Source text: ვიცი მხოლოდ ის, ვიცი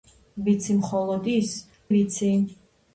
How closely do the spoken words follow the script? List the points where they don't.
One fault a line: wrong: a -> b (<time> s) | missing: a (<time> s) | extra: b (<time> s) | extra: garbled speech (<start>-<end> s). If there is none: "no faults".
no faults